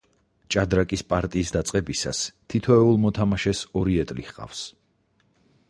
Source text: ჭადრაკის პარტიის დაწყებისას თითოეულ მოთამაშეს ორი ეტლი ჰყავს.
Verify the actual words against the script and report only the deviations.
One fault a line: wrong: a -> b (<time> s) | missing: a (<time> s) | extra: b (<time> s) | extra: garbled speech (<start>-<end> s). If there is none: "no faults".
no faults